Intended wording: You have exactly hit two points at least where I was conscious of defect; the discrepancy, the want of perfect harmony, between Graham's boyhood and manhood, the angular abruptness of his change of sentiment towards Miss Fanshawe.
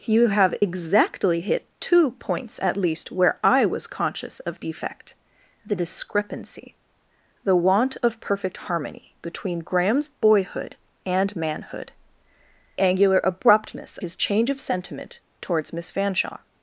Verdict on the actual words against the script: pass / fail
fail